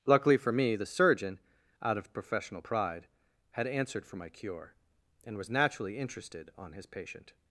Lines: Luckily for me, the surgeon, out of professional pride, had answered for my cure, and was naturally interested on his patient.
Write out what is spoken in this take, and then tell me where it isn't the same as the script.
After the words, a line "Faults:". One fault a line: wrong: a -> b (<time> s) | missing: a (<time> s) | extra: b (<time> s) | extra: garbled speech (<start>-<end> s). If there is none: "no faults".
Luckily for me, the surgeon, out of professional pride, had answered for my cure, and was naturally interested on his patient.
Faults:
no faults